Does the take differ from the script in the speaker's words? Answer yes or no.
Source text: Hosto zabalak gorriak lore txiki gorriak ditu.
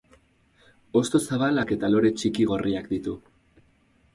yes